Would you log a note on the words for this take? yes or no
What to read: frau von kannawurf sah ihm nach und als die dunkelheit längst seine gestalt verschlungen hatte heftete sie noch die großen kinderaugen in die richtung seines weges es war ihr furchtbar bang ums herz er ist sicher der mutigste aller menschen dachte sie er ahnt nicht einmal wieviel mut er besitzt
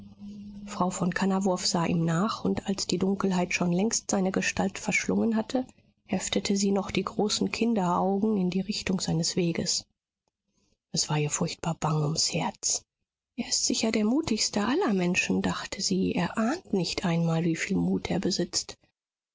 yes